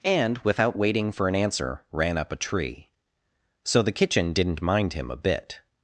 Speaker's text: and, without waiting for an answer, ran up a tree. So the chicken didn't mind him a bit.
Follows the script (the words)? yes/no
no